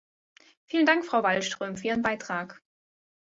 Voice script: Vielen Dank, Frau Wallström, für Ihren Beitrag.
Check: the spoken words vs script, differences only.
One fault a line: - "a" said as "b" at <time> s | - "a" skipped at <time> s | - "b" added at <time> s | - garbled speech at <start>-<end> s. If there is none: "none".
none